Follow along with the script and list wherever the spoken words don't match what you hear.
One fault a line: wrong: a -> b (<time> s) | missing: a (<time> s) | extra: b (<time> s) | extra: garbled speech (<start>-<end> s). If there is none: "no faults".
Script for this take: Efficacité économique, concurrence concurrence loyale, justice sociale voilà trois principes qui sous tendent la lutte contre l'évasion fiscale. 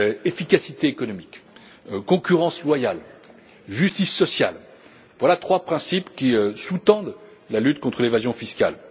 missing: concurrence (2.6 s)